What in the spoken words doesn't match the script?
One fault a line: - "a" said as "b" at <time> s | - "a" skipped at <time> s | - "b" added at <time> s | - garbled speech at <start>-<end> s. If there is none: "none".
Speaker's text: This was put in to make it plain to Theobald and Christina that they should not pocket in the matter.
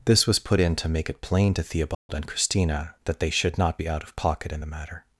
- "be out of" added at 3.8 s